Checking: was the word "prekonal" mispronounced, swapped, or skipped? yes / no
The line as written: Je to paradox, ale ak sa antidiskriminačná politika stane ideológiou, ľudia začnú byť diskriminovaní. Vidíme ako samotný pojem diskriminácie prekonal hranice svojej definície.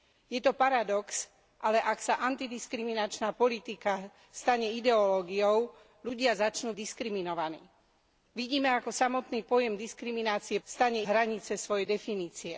yes